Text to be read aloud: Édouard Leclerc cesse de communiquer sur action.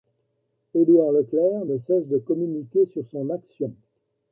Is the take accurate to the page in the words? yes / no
no